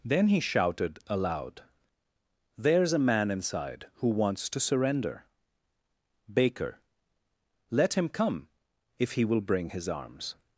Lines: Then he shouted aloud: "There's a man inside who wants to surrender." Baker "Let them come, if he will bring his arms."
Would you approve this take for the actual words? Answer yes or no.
no